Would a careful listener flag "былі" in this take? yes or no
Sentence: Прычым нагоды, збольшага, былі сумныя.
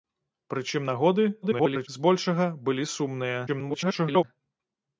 no